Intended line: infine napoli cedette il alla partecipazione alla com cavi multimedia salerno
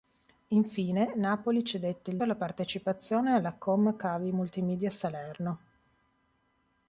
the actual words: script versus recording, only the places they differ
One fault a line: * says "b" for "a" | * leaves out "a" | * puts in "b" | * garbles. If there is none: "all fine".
all fine